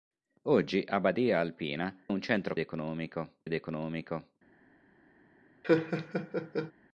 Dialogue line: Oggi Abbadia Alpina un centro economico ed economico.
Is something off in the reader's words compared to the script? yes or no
no